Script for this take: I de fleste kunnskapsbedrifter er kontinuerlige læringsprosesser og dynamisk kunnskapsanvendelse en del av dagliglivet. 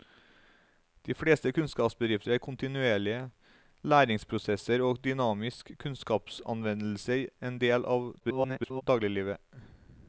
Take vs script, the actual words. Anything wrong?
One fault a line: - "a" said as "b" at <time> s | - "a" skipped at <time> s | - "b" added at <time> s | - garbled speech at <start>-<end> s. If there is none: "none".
- garbled speech at 8.2-8.8 s